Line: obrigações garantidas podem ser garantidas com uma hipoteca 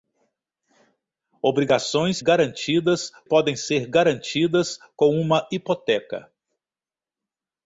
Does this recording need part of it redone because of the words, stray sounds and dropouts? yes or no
no